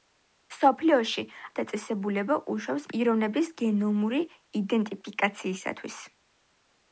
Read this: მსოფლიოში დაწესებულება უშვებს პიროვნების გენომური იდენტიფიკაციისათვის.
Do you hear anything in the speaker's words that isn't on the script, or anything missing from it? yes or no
no